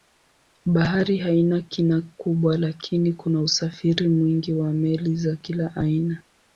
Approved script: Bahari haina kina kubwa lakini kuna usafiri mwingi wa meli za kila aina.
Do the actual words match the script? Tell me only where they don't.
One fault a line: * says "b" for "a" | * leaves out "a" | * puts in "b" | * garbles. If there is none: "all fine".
all fine